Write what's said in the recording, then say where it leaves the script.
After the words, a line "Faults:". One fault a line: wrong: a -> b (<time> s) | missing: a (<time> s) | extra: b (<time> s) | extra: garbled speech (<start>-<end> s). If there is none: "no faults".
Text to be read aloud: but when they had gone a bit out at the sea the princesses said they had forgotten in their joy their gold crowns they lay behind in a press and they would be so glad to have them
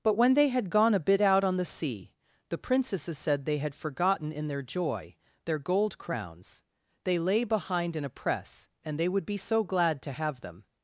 but when they had gone a bit out on the sea the princesses said they had forgotten in their joy their gold crowns they lay behind in a press and they would be so glad to have them
Faults:
wrong: at -> on (1.4 s)